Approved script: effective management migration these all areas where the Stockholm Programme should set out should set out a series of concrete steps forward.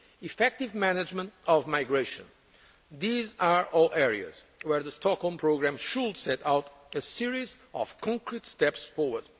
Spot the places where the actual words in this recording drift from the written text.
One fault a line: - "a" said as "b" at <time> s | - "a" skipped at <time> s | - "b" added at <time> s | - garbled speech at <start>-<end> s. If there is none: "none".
- "of" added at 1.5 s
- "are" added at 3.4 s
- "should set out" skipped at 6.7 s